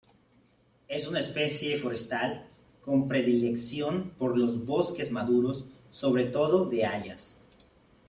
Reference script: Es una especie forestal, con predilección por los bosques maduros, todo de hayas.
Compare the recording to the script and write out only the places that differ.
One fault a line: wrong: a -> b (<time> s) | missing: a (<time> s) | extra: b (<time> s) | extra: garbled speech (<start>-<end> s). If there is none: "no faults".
extra: sobre (5.9 s)